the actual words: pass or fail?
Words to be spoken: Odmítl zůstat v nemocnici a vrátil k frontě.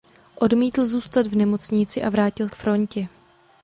pass